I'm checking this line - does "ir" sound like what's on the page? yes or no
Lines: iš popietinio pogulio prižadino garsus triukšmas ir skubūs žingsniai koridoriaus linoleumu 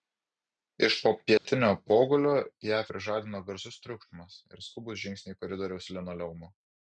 yes